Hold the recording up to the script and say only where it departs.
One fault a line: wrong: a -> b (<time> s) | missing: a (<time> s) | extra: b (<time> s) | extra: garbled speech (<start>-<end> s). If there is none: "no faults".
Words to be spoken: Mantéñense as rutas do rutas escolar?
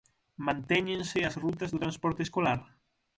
wrong: rutas -> transporte (1.8 s)